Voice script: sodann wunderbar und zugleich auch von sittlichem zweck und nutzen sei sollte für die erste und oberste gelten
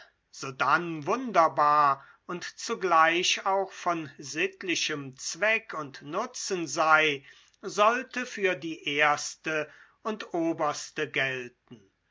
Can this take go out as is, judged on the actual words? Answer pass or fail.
pass